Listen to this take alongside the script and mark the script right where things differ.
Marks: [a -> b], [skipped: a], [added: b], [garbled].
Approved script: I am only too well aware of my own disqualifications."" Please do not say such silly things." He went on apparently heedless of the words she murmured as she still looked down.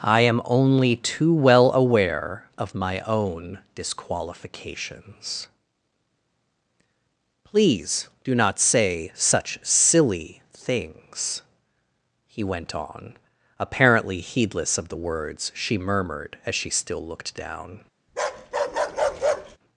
I am only too well aware of my own disqualifications."" Please do not say such silly things." He went on apparently heedless of the words she murmured as she still looked down.